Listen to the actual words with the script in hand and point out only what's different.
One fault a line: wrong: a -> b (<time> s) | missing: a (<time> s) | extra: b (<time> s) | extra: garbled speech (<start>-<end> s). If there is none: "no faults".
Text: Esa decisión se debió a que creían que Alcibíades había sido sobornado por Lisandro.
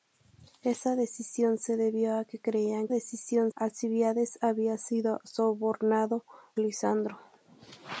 wrong: que -> decisión (2.9 s)
missing: por (6.2 s)